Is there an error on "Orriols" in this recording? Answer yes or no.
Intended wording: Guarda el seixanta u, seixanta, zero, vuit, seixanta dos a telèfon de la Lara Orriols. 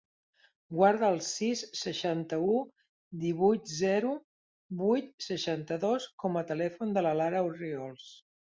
no